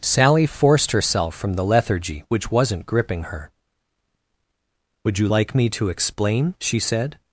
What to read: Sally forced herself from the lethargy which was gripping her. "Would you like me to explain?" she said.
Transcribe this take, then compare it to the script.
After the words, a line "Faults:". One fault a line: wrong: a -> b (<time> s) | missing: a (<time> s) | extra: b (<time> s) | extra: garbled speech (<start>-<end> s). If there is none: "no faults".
Sally forced herself from the lethargy which wasn't gripping her. "Would you like me to explain?" she said.
Faults:
wrong: was -> wasn't (2.5 s)